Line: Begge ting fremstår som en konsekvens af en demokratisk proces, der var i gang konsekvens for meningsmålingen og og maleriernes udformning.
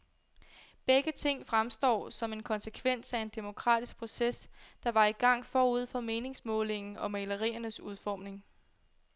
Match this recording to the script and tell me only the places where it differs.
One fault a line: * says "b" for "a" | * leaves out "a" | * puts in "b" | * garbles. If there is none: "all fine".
* says "forud" for "konsekvens"
* leaves out "og"